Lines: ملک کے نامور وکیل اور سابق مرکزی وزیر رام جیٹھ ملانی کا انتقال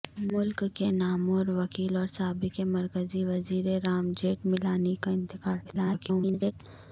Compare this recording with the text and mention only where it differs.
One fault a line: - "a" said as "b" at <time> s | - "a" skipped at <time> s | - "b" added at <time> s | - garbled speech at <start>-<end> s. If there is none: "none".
- garbled speech at 5.6-6.5 s